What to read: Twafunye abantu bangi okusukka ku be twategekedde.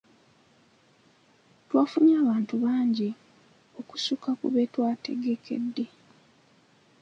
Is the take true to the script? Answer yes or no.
yes